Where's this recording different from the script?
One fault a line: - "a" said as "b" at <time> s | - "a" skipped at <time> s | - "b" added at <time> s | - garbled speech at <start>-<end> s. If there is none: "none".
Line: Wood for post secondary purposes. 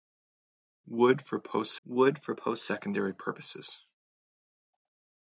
- "wood for post" added at 1.9 s